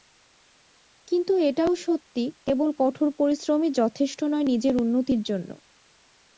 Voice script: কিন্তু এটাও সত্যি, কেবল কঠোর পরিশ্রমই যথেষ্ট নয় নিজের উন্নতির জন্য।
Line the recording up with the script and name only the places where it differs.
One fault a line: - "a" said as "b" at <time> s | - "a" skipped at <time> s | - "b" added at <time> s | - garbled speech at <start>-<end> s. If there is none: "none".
none